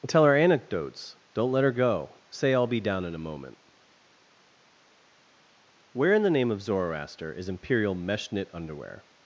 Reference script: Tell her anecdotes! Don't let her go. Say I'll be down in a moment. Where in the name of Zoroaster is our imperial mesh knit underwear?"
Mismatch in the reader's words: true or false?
true